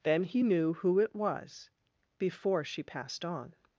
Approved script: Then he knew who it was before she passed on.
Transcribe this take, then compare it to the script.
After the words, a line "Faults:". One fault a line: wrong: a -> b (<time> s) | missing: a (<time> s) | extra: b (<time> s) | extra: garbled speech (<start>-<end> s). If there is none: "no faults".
Then he knew who it was before she passed on.
Faults:
no faults